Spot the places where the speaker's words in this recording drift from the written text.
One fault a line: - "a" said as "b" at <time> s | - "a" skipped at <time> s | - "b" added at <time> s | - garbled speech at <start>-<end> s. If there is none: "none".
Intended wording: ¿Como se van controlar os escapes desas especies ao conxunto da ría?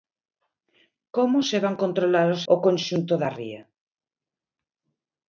- "escapes desas especies" skipped at 2.4 s